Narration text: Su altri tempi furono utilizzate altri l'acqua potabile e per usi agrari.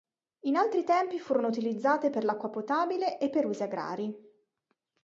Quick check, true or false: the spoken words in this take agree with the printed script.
false